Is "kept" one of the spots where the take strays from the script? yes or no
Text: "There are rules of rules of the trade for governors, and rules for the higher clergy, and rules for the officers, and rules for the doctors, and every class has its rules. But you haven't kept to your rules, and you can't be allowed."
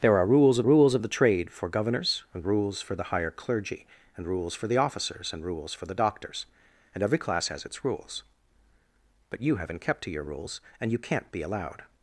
no